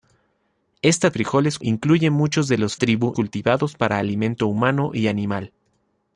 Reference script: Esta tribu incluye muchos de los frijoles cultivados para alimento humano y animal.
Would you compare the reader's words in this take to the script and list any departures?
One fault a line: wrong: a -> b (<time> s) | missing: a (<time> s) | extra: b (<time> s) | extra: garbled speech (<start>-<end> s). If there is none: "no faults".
wrong: tribu -> frijoles (1.1 s)
wrong: frijoles -> tribu (2.7 s)